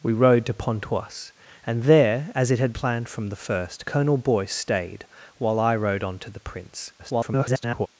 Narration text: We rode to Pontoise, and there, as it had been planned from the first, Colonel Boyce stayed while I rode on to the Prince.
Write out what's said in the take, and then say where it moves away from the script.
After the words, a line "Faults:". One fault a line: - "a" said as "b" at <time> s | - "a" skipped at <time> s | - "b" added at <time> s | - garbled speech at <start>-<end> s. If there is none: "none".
We rode to Pontoise, and there, as it had planned from the first, Colonel Boyce stayed while I rode on to the Prince. [garbled]
Faults:
- "been" skipped at 2.7 s
- garbled speech at 7.0-7.9 s